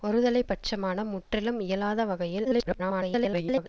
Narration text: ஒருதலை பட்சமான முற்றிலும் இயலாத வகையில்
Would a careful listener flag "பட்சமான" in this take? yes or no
no